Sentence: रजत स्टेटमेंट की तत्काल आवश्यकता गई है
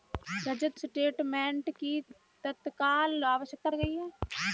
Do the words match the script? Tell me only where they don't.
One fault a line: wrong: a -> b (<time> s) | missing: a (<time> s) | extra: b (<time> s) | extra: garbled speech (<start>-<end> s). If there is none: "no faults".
no faults